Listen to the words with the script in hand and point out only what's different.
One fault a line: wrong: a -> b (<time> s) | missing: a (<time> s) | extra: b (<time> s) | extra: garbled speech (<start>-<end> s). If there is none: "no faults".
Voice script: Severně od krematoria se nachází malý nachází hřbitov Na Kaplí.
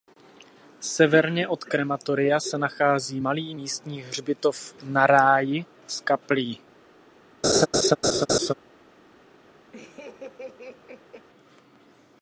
wrong: nachází -> místní (3.5 s)
extra: Ráji s (5.1 s)